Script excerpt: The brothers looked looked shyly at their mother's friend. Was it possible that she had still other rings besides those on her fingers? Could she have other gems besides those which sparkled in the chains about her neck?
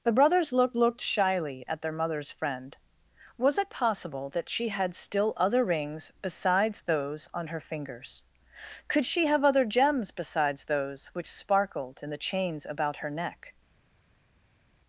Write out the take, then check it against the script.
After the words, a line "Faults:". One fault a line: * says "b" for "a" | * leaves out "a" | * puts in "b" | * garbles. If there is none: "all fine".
The brothers looked looked shyly at their mother's friend. Was it possible that she had still other rings besides those on her fingers? Could she have other gems besides those which sparkled in the chains about her neck?
Faults:
all fine